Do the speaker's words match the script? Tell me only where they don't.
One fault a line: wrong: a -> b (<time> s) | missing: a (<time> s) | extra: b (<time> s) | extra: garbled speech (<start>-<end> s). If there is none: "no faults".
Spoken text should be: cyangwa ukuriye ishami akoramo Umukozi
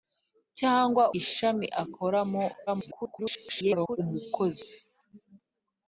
missing: ukuriye (1.0 s)
extra: garbled speech (2.7-4.0 s)